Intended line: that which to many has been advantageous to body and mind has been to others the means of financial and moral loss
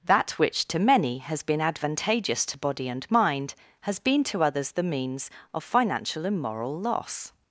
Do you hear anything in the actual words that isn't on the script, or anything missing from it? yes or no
no